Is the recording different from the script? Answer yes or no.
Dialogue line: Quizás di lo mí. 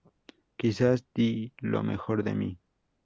yes